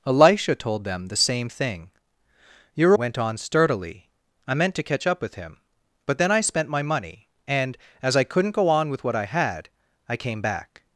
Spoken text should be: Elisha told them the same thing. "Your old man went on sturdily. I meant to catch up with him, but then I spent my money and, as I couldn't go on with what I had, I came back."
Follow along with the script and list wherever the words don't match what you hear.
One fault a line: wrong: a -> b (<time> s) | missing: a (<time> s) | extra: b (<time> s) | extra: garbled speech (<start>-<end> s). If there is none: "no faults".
missing: old man (3.0 s)